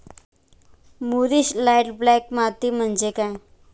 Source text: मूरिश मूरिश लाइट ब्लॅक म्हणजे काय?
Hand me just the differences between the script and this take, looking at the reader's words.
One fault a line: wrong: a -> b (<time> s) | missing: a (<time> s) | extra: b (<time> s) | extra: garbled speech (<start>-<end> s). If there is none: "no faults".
missing: मूरिश (1.5 s)
extra: माती (2.3 s)